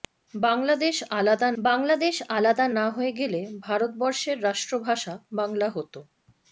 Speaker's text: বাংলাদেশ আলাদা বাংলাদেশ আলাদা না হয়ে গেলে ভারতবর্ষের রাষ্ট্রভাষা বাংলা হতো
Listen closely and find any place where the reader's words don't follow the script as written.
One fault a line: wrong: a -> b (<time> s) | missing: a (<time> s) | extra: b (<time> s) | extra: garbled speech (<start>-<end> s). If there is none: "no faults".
no faults